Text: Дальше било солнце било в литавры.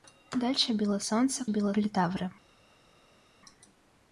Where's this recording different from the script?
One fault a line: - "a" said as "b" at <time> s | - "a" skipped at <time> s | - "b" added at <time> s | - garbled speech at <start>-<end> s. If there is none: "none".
none